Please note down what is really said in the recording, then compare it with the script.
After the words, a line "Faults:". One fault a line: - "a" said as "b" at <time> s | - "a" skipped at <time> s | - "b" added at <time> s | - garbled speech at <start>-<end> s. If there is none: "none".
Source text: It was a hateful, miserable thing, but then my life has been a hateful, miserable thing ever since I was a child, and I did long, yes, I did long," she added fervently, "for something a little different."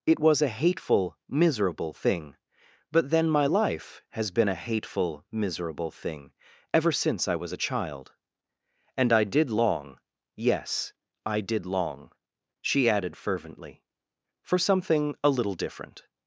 It was a hateful, miserable thing, but then my life has been a hateful, miserable thing ever since I was a child, and I did long, yes, I did long," she added fervently, "for something a little different."
Faults:
none